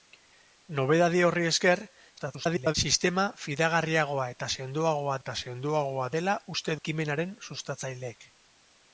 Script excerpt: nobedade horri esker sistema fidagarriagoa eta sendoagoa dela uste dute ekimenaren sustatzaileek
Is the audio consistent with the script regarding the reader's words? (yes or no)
no